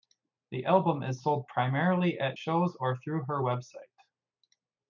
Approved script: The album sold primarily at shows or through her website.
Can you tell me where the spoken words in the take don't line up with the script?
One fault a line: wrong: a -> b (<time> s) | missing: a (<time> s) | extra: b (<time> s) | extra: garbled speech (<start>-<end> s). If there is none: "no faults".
extra: is (1.0 s)